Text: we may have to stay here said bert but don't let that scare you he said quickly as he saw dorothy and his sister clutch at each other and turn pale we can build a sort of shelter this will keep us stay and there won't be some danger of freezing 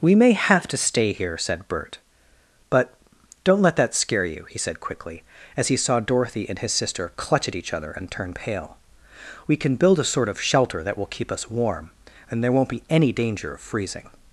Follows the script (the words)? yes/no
no